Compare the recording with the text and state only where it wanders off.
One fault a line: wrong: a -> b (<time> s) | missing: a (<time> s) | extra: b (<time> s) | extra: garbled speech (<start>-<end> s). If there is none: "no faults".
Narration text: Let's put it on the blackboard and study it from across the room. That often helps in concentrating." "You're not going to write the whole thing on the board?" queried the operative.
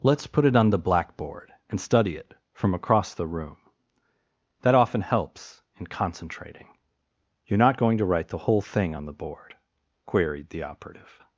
no faults